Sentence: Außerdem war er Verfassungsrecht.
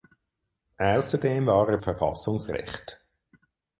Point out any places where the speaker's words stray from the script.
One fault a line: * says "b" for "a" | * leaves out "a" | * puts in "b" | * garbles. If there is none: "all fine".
all fine